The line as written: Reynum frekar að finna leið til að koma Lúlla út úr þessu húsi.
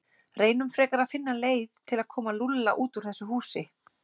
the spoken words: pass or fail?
pass